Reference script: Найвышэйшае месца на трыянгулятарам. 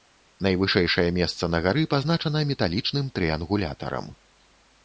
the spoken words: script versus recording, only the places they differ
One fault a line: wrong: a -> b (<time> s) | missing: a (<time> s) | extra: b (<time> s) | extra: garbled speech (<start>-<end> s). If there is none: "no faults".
extra: гары пазначана металічным (1.7 s)